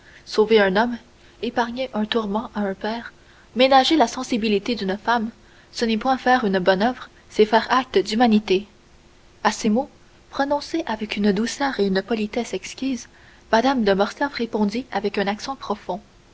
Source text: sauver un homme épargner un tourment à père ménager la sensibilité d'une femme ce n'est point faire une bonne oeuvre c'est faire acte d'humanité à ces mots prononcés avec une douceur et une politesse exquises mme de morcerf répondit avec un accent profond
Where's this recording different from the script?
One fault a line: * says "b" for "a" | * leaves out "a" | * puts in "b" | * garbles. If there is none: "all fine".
* puts in "un"